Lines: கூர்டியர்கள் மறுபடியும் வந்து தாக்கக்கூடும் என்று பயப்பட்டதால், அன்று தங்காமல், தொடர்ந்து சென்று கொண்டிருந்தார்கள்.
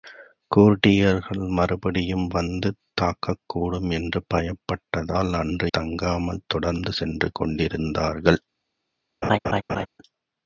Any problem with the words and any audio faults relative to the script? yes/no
yes